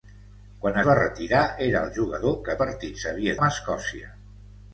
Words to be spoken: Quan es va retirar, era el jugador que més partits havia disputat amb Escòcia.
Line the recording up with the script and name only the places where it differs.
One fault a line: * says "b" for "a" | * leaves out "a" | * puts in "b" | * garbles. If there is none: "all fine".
* leaves out "es"
* leaves out "més"
* leaves out "disputat"